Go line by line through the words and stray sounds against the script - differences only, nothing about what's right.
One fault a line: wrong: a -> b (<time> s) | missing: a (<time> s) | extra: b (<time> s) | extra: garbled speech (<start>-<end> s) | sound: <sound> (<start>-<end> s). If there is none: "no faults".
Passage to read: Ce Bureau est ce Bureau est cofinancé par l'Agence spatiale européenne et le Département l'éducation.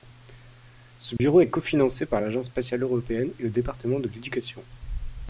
sound: dropout (1.2-1.2 s)
missing: ce Bureau est (1.5 s)
extra: de (4.0 s)